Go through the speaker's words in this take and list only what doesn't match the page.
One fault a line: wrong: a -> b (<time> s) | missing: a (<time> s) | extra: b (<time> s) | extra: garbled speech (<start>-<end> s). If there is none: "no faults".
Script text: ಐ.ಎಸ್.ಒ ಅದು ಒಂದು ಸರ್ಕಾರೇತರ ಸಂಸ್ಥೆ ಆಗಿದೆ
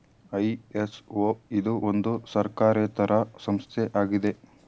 wrong: ಅದು -> ಇದು (1.5 s)